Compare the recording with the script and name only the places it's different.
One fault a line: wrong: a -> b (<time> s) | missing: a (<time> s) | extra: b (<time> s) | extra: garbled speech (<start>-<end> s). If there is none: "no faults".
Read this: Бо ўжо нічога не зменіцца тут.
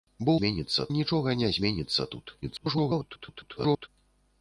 wrong: ўжо -> зменіцца (0.4 s)
extra: garbled speech (2.4-3.9 s)